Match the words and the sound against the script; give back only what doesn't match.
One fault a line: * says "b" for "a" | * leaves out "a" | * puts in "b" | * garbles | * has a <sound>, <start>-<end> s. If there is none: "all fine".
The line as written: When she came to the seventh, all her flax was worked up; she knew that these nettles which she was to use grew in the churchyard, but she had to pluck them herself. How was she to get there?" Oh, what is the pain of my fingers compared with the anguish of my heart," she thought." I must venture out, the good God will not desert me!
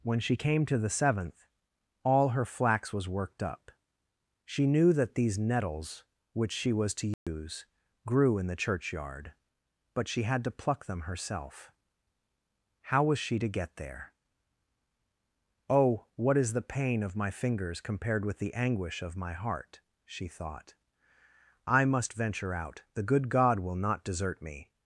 * has a dropout, 7.1-7.3 s